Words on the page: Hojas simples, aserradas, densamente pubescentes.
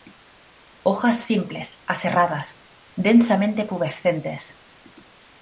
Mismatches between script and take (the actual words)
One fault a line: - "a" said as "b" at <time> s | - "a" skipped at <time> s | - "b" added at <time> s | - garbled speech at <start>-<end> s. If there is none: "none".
none